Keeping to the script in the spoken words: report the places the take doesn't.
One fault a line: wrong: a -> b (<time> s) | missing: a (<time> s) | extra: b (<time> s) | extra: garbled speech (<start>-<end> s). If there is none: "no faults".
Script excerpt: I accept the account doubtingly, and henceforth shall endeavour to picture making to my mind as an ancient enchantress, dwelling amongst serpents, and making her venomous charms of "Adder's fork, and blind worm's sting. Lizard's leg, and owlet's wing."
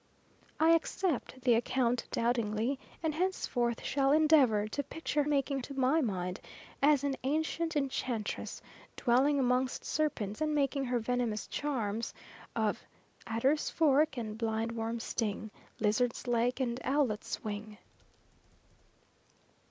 no faults